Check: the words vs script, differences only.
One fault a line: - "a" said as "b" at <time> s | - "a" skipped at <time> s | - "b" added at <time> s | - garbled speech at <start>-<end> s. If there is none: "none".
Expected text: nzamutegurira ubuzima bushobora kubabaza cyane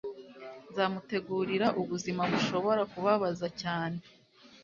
none